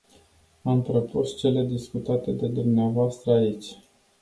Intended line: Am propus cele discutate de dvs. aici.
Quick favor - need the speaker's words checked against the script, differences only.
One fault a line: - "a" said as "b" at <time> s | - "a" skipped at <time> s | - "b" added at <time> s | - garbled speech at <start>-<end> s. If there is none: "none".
none